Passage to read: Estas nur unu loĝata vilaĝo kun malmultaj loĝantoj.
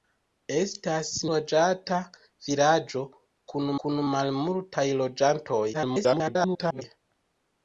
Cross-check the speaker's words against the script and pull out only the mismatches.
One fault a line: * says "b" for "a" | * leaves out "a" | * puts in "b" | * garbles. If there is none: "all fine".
* leaves out "nur unu"
* puts in "kun"
* garbles